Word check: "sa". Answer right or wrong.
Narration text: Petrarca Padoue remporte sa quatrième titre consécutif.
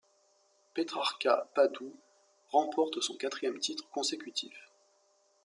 wrong